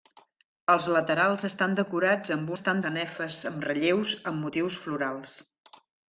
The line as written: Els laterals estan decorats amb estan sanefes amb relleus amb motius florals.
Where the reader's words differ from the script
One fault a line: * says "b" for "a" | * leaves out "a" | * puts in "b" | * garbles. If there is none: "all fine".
all fine